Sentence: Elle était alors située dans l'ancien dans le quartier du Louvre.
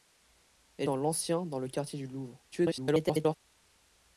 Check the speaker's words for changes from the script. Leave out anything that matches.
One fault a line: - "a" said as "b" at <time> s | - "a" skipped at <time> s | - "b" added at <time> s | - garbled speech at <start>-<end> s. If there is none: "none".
- "était alors située" skipped at 0.9 s
- garbled speech at 2.5-3.4 s